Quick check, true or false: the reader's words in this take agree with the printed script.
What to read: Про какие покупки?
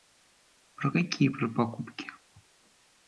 false